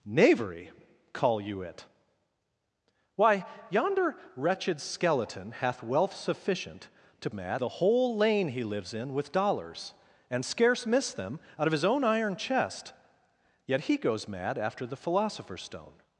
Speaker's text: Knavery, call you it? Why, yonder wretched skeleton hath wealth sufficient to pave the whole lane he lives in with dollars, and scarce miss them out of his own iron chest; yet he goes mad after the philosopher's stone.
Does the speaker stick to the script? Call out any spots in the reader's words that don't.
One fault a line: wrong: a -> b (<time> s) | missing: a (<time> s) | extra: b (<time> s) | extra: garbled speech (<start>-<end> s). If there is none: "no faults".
wrong: pave -> mad (7.3 s)